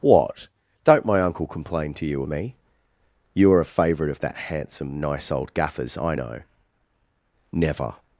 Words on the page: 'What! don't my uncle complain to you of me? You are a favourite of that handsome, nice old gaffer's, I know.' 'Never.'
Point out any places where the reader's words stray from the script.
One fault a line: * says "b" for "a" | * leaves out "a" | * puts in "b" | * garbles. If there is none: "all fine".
* leaves out "of"